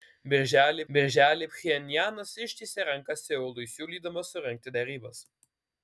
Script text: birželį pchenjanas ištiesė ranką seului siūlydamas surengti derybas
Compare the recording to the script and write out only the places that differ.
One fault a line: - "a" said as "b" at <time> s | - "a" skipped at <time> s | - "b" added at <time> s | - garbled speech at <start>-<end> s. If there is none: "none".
- "birželį" added at 0.9 s